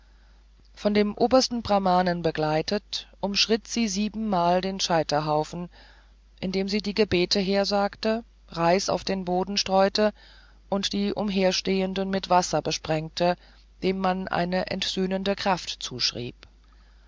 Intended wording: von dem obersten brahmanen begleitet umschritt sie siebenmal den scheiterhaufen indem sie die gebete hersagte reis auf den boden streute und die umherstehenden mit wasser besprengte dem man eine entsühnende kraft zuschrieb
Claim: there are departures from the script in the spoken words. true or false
false